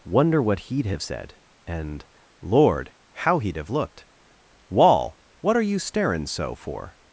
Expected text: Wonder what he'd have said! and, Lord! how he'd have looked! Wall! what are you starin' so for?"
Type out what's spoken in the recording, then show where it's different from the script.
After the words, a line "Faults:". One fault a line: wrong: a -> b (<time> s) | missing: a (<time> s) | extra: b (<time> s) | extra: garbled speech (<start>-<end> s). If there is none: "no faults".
Wonder what he'd have said! and, Lord! how he'd have looked! Wall! what are you starin' so for?"
Faults:
no faults